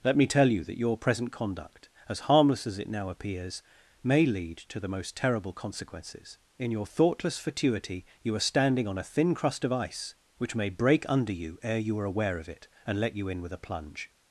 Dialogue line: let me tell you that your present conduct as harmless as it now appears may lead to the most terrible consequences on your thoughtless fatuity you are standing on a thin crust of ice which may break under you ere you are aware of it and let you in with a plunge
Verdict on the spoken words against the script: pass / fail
fail